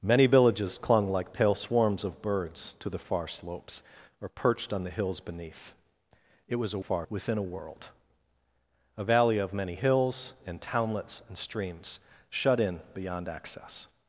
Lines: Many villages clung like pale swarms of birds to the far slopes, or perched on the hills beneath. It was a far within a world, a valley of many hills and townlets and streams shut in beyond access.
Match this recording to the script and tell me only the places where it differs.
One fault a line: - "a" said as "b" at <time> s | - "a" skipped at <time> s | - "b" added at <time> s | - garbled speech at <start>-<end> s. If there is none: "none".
none